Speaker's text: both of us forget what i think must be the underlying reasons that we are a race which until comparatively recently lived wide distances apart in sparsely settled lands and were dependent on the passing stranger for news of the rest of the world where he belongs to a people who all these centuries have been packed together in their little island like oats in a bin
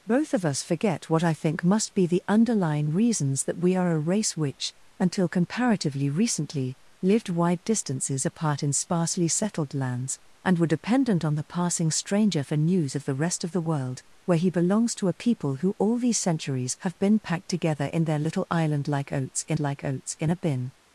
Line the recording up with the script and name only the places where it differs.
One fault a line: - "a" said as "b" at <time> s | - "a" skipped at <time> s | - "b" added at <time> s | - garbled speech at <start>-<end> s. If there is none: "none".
- "like oats in" added at 19.6 s